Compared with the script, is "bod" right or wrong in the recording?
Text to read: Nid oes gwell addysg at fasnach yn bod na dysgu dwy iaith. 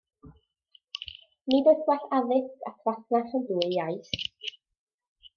wrong